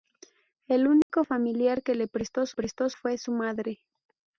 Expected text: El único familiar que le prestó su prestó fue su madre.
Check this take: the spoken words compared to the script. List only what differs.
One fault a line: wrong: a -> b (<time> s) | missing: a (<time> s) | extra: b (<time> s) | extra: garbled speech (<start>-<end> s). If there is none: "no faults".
no faults